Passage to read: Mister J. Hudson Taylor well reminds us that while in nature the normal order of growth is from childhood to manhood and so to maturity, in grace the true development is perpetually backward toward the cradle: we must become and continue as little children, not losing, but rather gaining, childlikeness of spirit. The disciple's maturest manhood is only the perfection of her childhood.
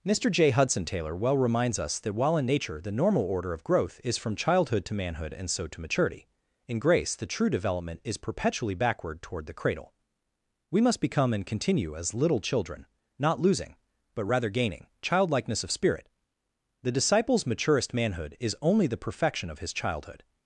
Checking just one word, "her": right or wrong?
wrong